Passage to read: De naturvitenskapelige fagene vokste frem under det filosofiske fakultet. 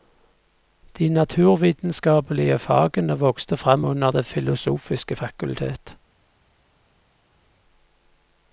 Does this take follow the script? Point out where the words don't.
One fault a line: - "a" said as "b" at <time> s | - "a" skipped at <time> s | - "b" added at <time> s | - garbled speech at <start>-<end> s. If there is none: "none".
none